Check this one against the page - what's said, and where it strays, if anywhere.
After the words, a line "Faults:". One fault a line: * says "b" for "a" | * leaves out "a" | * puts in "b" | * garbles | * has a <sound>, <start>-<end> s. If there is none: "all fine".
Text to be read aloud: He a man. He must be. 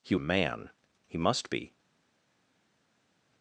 He a man. He must be.
Faults:
all fine